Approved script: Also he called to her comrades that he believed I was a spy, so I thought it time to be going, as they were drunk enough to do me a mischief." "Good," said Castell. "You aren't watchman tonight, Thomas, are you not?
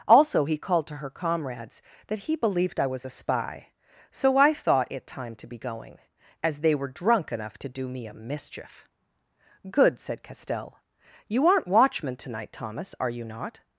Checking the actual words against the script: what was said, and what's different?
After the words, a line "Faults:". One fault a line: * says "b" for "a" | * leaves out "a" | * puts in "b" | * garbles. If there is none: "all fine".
Also he called to her comrades that he believed I was a spy, so I thought it time to be going, as they were drunk enough to do me a mischief." "Good," said Castell. "You aren't watchman tonight, Thomas, are you not?
Faults:
all fine